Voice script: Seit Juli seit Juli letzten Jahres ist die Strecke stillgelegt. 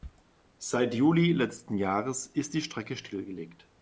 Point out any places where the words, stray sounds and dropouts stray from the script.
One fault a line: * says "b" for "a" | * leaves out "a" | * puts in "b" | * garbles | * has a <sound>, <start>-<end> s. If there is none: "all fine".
* leaves out "seit Juli"